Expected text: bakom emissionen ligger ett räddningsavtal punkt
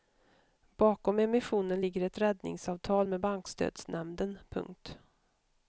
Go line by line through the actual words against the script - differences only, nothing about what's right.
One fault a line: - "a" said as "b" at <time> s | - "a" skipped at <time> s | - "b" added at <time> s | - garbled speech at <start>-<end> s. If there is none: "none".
- "med bankstödsnämnden" added at 3.1 s